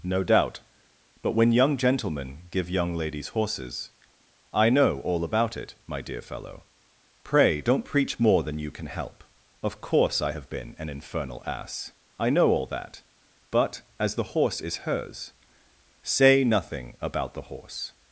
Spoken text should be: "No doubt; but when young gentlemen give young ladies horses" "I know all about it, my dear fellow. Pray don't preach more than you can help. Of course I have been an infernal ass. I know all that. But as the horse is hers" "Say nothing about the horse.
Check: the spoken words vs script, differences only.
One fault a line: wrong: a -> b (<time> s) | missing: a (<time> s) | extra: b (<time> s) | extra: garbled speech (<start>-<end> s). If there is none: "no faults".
no faults